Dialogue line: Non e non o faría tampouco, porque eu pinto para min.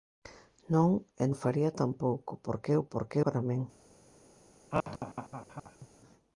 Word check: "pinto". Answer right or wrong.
wrong